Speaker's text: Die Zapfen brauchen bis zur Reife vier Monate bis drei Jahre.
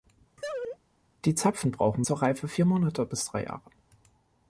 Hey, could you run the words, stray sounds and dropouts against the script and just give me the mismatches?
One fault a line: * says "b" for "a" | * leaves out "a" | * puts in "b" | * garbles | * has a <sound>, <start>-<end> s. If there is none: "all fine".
* has a laugh, 0.4-0.8 s
* leaves out "bis"